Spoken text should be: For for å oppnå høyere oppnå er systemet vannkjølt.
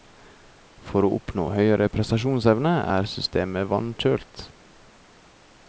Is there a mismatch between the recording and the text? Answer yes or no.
yes